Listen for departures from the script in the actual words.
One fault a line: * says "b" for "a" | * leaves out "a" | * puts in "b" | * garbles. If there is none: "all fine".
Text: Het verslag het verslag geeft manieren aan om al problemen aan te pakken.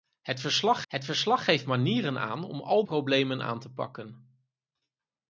all fine